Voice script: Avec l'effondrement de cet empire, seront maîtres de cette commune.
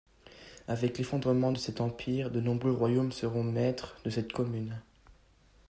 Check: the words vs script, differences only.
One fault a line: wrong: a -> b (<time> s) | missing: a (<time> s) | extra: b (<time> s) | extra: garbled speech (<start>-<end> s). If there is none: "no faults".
extra: de nombreux royaumes (2.3 s)